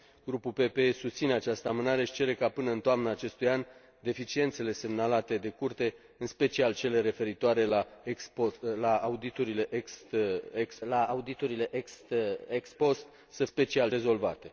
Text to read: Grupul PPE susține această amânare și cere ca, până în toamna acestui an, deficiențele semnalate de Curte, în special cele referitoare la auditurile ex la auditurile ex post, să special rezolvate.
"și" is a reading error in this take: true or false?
false